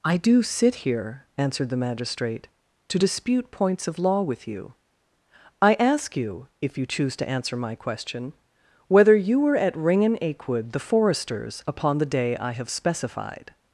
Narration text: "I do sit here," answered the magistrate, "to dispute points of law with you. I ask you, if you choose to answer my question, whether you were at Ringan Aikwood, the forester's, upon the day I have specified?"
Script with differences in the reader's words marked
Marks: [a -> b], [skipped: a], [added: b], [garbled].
"I do sit here," answered the magistrate, "to dispute points of law with you. I ask you, if you choose to answer my question, whether you were at Ringan Aikwood, the forester's, upon the day I have specified?"